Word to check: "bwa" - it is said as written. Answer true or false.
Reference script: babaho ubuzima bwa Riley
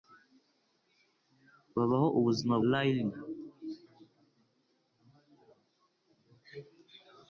false